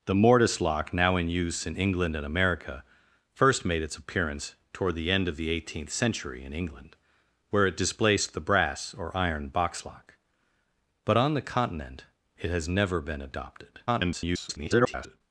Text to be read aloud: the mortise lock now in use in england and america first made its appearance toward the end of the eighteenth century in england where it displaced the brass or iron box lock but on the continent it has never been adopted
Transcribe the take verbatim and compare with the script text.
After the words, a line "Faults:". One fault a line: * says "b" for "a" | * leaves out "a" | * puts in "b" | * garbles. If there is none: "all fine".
the mortise lock now in use in england and america first made its appearance toward the end of the eighteenth century in england where it displaced the brass or iron box lock but on the continent it has never been adopted [garbled]
Faults:
* garbles